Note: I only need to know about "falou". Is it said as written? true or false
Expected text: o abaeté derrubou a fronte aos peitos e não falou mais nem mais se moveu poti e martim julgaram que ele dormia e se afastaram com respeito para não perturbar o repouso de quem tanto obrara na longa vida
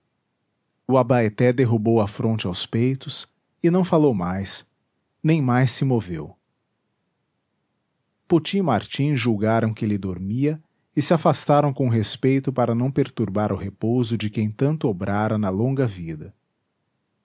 true